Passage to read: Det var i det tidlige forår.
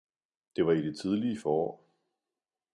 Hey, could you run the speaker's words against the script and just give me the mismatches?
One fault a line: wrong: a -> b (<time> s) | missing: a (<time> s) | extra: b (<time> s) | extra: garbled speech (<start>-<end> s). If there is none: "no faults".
no faults